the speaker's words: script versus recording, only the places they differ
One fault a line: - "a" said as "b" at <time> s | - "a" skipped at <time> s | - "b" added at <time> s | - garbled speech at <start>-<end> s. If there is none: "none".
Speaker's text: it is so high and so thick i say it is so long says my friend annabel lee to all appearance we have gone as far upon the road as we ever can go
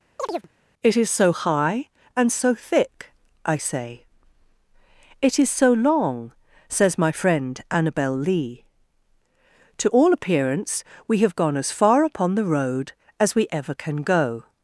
none